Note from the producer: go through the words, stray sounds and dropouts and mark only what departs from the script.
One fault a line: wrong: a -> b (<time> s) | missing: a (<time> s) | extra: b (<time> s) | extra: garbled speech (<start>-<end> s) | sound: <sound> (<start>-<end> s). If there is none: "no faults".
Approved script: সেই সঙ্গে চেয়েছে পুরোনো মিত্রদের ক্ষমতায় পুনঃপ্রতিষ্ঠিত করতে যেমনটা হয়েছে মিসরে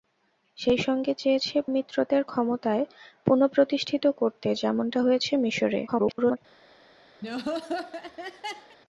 missing: পুরোনো (1.6 s)
extra: garbled speech (5.9-6.4 s)
sound: laugh (7.2-8.8 s)